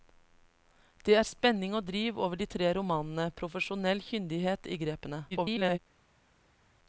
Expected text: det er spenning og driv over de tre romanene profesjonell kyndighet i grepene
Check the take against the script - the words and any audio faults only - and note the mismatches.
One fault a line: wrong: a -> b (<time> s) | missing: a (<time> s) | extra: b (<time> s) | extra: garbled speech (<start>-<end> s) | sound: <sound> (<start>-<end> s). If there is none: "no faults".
extra: garbled speech (5.3-5.8 s)